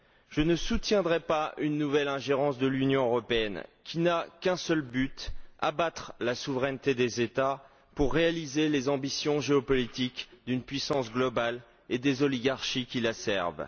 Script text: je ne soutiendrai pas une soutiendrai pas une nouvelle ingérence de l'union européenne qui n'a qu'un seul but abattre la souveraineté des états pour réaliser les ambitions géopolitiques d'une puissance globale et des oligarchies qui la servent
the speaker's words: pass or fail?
fail